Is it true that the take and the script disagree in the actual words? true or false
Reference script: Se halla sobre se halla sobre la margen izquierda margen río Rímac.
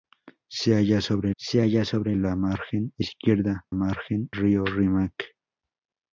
false